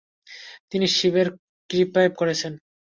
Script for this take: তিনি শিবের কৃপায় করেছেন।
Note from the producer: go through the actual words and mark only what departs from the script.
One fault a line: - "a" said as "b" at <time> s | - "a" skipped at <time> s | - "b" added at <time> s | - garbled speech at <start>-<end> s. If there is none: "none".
none